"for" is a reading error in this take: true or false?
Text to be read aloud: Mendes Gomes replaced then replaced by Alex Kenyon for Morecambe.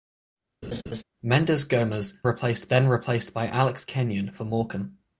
false